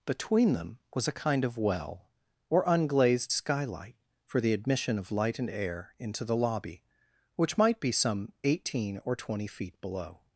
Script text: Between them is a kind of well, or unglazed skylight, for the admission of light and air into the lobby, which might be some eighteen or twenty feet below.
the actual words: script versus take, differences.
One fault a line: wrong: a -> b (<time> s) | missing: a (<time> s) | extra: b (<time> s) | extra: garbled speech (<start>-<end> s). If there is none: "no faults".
wrong: is -> was (0.9 s)